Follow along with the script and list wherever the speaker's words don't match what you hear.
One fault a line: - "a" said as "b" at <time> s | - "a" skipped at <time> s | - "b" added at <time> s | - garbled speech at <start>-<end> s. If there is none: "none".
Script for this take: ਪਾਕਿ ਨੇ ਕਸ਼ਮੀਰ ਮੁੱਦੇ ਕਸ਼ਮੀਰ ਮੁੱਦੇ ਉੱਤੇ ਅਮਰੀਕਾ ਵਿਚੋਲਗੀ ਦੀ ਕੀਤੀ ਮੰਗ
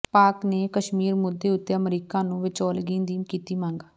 - "ਕਸ਼ਮੀਰ ਮੁੱਦੇ" skipped at 1.5 s
- "ਨੂੰ" added at 2.2 s